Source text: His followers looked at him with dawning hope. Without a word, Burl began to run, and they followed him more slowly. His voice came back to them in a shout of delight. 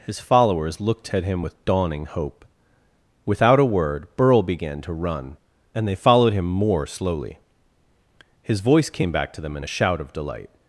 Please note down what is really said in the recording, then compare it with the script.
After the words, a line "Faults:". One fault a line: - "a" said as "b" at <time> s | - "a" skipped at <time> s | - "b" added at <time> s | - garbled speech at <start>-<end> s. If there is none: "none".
His followers looked at him with dawning hope. Without a word, Burl began to run, and they followed him more slowly. His voice came back to them in a shout of delight.
Faults:
none